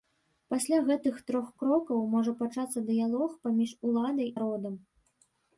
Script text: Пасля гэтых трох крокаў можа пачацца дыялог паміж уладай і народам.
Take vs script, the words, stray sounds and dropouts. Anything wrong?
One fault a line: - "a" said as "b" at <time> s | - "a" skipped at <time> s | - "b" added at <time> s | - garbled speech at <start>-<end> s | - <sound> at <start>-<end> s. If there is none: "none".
- "і" skipped at 4.3 s